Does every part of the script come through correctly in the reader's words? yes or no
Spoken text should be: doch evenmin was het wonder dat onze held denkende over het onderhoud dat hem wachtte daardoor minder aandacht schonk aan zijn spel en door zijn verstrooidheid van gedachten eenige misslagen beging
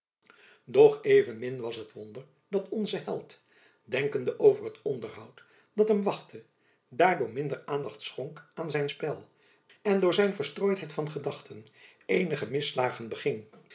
yes